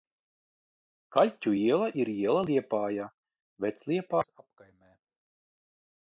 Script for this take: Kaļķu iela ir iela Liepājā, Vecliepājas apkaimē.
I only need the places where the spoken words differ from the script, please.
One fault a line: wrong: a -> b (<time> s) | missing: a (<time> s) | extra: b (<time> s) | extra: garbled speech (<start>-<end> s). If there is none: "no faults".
no faults